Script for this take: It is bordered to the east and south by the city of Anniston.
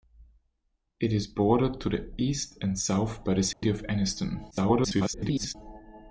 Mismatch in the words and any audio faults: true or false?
true